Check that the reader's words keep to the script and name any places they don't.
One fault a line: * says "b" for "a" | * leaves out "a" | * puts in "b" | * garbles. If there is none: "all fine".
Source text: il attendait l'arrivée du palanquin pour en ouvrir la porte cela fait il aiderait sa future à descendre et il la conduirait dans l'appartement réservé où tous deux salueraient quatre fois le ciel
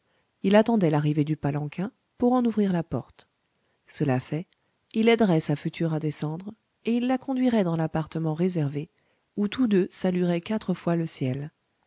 all fine